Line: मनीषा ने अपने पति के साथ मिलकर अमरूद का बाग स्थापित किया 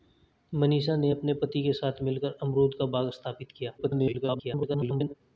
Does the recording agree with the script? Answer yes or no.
no